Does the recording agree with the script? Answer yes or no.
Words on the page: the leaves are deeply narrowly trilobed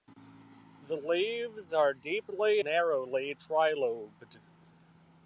yes